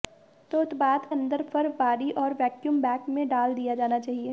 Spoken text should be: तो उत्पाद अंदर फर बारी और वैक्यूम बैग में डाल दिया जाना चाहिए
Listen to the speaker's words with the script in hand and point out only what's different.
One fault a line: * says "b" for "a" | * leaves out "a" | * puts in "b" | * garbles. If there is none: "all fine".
all fine